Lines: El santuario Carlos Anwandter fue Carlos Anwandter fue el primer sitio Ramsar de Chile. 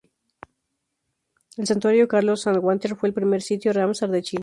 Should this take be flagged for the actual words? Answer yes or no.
yes